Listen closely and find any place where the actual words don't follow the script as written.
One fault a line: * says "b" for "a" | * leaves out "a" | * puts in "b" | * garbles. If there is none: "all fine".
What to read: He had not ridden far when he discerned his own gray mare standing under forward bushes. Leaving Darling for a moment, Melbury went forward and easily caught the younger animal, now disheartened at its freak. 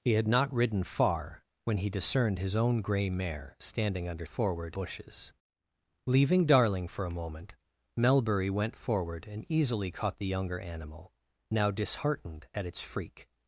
all fine